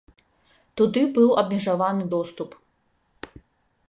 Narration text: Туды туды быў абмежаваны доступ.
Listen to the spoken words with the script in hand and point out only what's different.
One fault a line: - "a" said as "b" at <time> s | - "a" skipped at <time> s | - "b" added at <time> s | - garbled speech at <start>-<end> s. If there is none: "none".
- "туды" skipped at 1.0 s